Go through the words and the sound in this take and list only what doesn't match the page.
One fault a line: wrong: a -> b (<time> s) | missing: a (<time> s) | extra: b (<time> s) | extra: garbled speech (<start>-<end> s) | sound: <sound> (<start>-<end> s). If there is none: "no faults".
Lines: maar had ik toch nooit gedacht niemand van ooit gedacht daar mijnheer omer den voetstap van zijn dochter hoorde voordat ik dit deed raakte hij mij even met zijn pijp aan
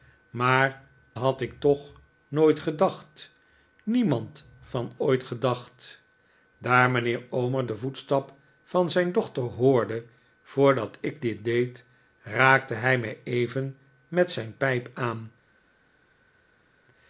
no faults